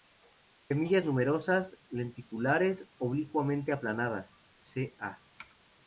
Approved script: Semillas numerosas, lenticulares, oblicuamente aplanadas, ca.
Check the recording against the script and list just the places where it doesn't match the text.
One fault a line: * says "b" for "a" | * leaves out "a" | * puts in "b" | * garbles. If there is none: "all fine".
all fine